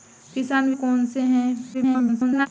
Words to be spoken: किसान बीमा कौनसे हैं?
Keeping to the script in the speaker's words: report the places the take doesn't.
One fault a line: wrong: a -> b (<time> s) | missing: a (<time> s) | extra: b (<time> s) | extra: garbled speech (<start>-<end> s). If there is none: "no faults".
missing: बीमा (0.7 s)
extra: garbled speech (1.7-2.5 s)